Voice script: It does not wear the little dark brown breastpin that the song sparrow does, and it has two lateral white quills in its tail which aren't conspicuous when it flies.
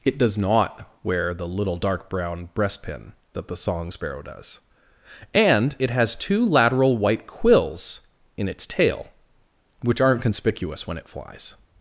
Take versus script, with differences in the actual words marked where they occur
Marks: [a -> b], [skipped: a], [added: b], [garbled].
It does not wear the little dark brown breastpin that the song sparrow does, and it has two lateral white quills in its tail which aren't conspicuous when it flies.